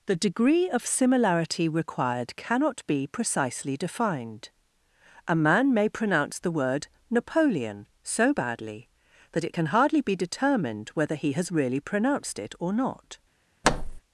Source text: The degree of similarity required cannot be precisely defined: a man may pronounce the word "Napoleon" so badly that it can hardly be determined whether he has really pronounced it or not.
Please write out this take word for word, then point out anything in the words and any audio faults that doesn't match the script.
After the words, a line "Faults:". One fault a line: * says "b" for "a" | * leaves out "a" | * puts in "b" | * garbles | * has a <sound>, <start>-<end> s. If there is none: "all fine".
The degree of similarity required cannot be precisely defined: a man may pronounce the word "Napoleon" so badly that it can hardly be determined whether he has really pronounced it or not.
Faults:
* has a thud, 13.6-14.0 s